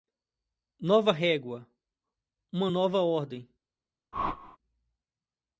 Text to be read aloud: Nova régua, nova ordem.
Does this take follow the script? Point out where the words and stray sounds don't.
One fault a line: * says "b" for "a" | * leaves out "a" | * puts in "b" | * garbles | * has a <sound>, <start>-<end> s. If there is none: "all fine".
* puts in "uma"
* has a whoosh, 4.1-4.6 s